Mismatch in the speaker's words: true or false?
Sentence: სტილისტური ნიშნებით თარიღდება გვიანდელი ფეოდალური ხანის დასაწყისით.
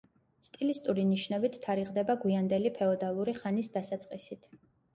false